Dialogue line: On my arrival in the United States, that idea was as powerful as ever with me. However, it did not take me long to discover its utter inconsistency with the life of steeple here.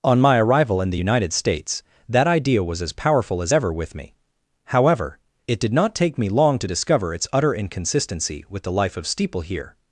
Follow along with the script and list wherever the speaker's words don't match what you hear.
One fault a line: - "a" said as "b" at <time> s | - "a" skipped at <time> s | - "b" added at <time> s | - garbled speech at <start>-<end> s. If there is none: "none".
none